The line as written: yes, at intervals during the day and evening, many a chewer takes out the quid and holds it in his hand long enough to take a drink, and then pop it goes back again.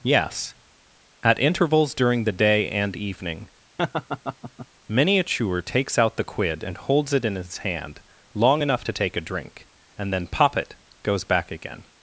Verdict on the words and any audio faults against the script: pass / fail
fail